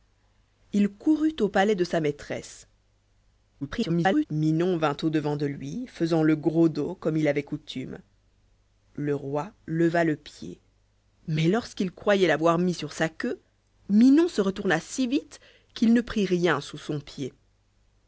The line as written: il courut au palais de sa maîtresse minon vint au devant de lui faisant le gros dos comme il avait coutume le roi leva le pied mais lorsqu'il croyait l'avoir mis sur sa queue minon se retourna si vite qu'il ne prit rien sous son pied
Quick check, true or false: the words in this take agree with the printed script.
false